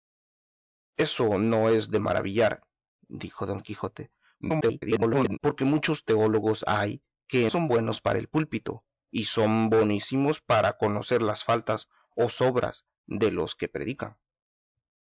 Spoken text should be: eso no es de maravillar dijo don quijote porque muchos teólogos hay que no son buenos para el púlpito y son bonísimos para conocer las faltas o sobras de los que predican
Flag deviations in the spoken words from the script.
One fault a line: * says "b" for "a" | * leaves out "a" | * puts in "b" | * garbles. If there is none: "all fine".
* garbles
* leaves out "no"